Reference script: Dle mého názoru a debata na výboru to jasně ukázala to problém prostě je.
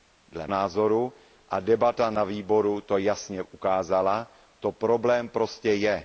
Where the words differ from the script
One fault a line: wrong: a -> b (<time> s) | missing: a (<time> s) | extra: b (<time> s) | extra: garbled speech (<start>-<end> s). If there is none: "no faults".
missing: mého (0.5 s)